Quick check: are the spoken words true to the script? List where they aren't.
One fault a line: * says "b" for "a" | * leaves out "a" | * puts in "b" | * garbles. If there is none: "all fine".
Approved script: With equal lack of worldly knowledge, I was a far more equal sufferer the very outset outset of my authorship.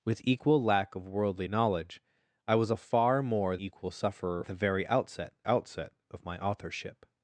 all fine